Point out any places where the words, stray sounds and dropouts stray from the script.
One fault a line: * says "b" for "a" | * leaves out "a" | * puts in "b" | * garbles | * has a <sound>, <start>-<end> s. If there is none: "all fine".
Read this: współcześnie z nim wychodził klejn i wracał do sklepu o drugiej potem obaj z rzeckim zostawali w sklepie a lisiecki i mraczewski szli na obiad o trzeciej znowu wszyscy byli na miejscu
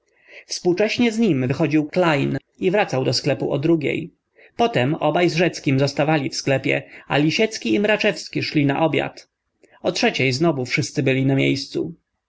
all fine